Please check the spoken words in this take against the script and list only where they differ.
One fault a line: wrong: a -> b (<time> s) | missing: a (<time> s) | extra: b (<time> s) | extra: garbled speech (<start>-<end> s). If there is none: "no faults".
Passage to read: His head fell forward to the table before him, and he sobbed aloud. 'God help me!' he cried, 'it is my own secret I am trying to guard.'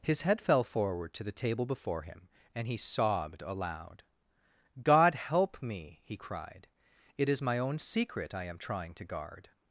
no faults